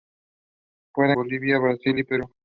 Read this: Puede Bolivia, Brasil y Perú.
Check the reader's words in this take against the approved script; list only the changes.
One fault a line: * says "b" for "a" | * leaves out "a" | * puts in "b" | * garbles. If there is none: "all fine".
all fine